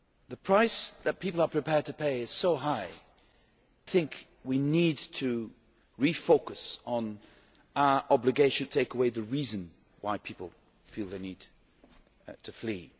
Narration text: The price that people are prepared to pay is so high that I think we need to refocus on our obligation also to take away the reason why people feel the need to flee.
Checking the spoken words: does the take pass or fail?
fail